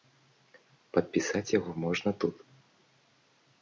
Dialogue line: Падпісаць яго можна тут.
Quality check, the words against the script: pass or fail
pass